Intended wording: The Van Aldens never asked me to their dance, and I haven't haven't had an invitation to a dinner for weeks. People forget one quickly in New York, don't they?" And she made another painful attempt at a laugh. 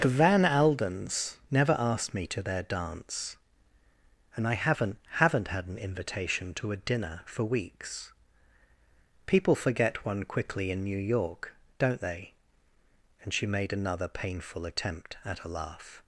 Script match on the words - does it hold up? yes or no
yes